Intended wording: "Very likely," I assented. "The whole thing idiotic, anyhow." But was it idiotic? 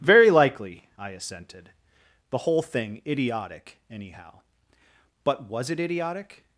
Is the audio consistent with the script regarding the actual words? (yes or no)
yes